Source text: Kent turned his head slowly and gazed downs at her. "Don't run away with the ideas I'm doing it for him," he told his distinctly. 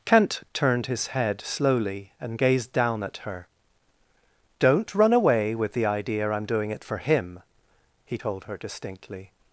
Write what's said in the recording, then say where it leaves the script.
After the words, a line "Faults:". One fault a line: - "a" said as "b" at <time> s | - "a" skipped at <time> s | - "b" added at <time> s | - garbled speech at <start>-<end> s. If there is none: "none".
Kent turned his head slowly and gazed down at her. "Don't run away with the idea I'm doing it for him," he told her distinctly.
Faults:
- "downs" said as "down" at 2.7 s
- "ideas" said as "idea" at 5.8 s
- "his" said as "her" at 8.4 s